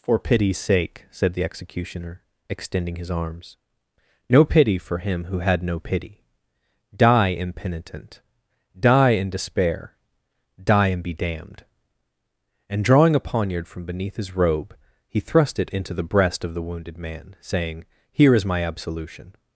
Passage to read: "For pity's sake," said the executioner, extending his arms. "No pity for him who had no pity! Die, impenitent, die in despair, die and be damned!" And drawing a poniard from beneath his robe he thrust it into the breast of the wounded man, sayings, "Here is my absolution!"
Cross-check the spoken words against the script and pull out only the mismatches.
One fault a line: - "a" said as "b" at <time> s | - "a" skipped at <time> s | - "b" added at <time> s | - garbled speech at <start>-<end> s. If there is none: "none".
- "sayings" said as "saying" at 17.4 s